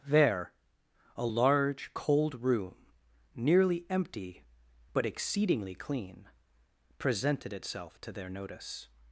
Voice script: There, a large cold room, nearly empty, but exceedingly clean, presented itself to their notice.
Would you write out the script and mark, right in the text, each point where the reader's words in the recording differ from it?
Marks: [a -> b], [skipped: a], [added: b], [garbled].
There, a large cold room, nearly empty, but exceedingly clean, presented itself to their notice.